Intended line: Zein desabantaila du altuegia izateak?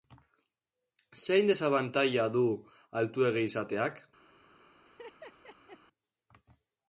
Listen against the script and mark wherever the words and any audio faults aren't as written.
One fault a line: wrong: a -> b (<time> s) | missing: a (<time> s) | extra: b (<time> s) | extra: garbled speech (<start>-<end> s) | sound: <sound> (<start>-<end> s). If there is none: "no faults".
sound: laugh (4.9-5.8 s)